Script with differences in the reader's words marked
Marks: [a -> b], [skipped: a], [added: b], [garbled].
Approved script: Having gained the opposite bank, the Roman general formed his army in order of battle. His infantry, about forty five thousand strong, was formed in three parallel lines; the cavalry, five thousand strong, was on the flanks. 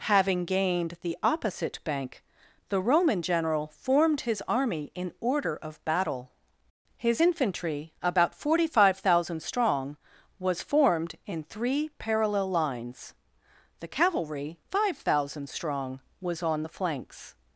Having gained the opposite bank, the Roman general formed his army in order of battle. His infantry, about forty five thousand strong, was formed in three parallel lines; the cavalry, five thousand strong, was on the flanks.